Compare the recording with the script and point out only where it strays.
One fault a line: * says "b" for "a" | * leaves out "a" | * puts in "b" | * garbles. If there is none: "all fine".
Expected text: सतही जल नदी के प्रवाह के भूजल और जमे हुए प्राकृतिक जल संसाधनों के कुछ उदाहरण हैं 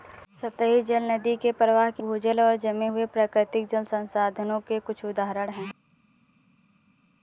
all fine